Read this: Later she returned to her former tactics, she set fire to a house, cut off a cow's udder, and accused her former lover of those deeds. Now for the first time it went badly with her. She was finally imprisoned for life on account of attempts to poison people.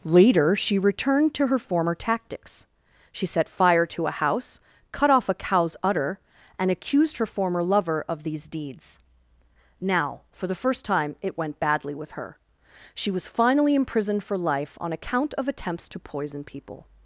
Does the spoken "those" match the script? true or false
false